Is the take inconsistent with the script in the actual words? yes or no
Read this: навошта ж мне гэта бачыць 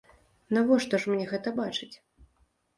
no